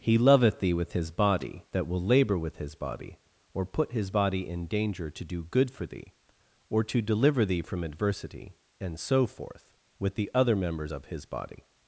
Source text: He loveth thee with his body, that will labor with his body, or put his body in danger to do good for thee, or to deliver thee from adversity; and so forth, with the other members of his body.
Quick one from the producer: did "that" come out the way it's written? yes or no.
yes